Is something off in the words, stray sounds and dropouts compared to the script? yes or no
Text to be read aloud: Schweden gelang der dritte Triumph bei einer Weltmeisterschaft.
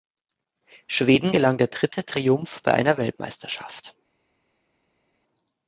no